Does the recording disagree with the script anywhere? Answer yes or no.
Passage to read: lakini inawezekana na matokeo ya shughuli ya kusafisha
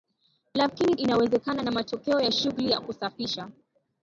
no